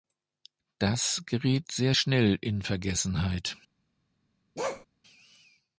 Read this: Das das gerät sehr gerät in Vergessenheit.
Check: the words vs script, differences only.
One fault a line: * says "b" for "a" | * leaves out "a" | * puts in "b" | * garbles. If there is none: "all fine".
* leaves out "das"
* says "schnell" for "gerät"